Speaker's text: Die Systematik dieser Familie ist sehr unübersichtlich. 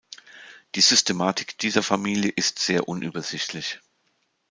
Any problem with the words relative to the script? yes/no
no